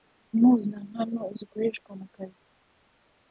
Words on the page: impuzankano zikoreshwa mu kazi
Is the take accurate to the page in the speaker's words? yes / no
yes